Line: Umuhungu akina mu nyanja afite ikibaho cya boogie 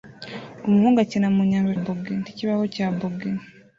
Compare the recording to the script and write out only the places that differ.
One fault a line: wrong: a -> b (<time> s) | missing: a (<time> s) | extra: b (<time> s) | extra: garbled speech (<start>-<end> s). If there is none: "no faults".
wrong: afite -> boogie (1.8 s)